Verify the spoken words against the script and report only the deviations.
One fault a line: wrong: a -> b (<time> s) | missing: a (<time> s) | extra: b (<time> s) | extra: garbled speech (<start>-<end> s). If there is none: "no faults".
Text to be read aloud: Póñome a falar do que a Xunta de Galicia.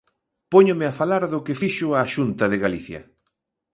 extra: fixo (1.6 s)